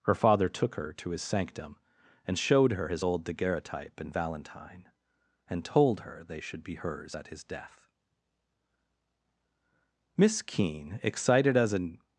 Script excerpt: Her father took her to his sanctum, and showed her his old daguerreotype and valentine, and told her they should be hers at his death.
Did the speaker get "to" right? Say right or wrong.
right